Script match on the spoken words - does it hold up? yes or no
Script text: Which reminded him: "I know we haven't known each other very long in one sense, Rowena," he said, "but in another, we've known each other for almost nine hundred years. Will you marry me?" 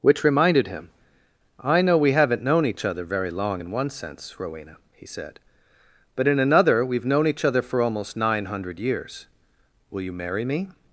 yes